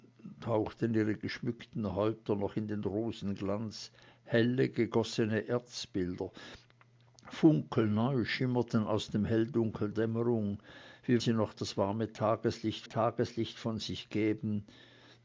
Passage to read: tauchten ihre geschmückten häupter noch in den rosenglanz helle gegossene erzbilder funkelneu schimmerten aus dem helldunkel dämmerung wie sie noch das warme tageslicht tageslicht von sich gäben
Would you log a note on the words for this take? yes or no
no